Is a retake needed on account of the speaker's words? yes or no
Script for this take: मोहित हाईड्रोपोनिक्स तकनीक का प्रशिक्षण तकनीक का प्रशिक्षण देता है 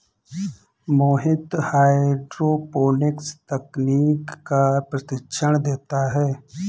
yes